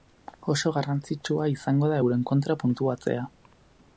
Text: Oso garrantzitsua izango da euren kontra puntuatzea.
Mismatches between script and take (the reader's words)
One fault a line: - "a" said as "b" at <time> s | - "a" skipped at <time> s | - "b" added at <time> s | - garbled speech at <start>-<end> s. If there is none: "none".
none